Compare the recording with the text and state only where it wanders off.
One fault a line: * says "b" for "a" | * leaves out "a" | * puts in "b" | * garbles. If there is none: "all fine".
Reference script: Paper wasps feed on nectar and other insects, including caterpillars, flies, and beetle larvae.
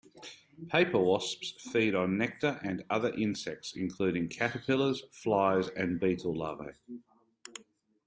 all fine